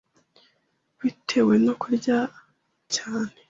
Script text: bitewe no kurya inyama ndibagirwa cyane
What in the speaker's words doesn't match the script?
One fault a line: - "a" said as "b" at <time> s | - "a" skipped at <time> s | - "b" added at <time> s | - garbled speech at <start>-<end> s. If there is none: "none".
- "inyama ndibagirwa" skipped at 2.2 s